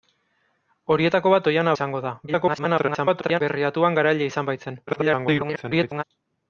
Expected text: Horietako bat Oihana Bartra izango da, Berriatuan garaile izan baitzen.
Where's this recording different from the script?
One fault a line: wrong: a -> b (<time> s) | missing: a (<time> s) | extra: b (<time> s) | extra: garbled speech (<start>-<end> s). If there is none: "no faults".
missing: Bartra (1.8 s)
extra: garbled speech (2.3-3.4 s)
extra: garbled speech (4.9-6.0 s)